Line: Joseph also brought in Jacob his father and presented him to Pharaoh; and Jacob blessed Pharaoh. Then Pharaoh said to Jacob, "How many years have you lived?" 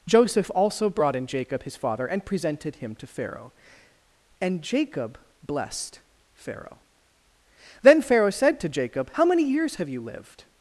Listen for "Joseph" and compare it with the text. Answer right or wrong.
right